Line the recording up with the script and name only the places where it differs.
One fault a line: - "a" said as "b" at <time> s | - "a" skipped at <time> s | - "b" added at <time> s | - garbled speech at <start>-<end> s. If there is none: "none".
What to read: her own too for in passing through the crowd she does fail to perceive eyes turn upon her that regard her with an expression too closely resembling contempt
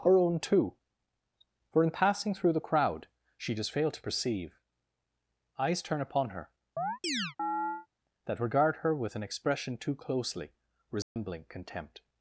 none